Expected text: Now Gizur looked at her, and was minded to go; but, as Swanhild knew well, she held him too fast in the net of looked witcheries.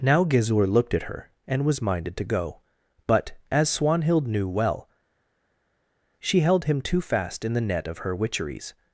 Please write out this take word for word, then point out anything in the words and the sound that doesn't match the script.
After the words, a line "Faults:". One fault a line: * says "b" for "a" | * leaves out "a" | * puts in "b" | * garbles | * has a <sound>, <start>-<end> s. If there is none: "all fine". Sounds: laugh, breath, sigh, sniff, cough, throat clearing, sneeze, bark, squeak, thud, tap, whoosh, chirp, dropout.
Now Gizur looked at her, and was minded to go; but, as Swanhild knew well, she held him too fast in the net of her witcheries.
Faults:
* says "her" for "looked"